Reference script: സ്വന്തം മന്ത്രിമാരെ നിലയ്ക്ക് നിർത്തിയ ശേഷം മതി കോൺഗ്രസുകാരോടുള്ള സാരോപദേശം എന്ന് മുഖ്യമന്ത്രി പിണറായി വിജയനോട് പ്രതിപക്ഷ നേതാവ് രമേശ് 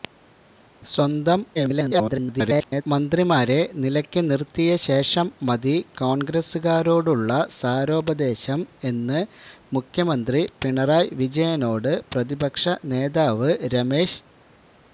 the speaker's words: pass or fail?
fail